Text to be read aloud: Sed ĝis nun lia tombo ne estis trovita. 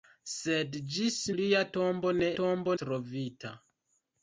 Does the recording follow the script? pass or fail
fail